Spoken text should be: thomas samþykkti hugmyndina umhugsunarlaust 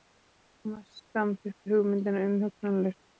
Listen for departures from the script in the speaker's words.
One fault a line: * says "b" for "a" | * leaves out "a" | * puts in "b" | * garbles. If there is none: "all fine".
all fine